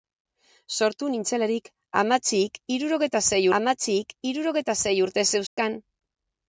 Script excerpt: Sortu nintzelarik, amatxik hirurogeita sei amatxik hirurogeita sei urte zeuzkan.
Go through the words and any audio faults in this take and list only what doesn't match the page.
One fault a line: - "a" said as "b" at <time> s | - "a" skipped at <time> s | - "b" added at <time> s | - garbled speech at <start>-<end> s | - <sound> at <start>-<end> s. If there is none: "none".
- dropout at 5.5-5.6 s